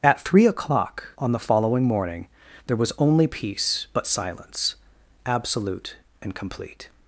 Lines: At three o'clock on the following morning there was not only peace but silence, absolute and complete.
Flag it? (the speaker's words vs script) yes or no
yes